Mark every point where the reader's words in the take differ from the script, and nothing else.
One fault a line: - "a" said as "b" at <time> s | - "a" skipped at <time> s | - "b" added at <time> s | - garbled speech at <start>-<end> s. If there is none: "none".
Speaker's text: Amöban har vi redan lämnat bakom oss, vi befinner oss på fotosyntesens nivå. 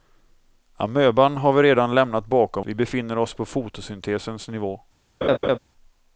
- "oss" skipped at 2.6 s